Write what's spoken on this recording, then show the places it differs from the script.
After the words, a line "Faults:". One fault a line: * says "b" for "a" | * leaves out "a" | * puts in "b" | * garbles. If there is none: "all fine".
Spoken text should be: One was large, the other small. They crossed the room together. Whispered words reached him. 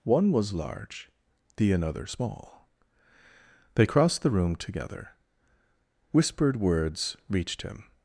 One was large, the another small. They crossed the room together. Whispered words reached him.
Faults:
* says "another" for "other"